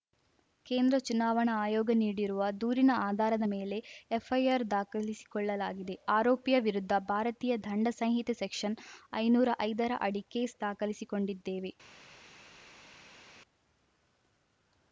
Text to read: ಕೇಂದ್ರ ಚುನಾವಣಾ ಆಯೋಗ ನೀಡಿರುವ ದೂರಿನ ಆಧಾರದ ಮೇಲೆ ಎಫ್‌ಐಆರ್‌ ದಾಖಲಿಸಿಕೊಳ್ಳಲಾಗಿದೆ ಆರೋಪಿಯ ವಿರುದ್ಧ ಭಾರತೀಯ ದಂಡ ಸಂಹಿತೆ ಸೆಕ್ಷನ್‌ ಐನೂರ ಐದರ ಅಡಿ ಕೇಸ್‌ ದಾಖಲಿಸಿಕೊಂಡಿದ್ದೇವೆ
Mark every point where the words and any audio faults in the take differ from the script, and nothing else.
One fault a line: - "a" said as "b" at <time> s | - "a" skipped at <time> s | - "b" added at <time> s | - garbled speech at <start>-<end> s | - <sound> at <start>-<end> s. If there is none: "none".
none